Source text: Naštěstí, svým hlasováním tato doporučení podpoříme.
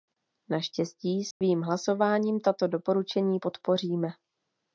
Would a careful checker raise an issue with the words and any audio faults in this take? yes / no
yes